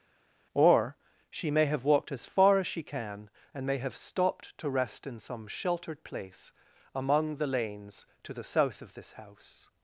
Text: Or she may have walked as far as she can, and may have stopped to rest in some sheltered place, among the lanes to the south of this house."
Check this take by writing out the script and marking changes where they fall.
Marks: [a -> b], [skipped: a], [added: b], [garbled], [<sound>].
Or she may have walked as far as she can, and may have stopped to rest in some sheltered place, among the lanes to the south of this house."